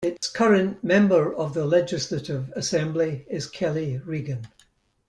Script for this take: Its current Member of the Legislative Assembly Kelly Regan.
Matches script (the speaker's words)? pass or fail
fail